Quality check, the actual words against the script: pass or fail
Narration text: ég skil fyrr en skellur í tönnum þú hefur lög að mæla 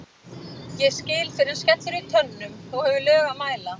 pass